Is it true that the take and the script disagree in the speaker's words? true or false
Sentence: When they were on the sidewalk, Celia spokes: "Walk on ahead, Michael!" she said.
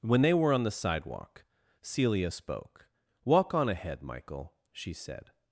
true